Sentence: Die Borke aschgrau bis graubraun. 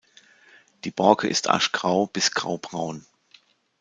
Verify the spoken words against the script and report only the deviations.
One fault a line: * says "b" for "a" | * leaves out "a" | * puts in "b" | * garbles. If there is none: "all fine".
* puts in "ist"